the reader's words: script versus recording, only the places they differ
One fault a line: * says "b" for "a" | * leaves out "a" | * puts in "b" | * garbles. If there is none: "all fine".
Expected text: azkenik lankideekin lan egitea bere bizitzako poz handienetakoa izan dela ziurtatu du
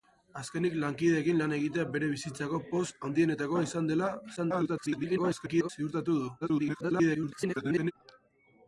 * garbles
* garbles